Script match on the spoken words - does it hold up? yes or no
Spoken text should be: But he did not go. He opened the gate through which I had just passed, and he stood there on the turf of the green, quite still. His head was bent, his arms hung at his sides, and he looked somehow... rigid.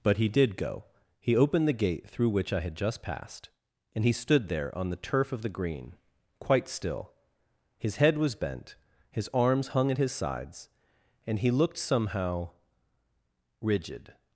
no